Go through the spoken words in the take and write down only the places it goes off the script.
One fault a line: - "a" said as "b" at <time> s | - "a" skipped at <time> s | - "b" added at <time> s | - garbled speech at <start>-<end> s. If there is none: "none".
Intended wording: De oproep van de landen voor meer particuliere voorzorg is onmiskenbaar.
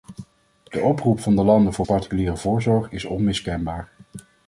- "meer" skipped at 1.9 s